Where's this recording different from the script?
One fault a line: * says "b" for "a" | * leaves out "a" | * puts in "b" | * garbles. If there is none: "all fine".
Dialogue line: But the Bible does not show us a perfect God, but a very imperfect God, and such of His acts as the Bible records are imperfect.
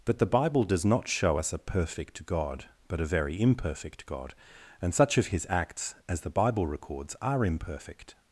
all fine